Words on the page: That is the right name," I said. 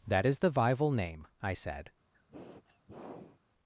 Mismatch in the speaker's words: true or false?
true